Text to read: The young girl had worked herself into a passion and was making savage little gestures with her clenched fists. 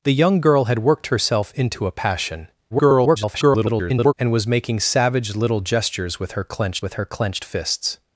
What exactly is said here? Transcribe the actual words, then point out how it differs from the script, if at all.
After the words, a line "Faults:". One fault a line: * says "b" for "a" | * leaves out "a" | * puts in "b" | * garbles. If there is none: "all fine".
The young girl had worked herself into a passion [garbled] and was making savage little gestures with her clenched with her clenched fists.
Faults:
* garbles
* puts in "with her clenched"